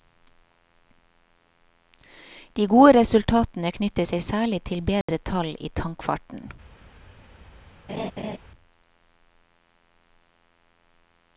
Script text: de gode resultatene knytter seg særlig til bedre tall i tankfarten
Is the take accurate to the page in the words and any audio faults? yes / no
no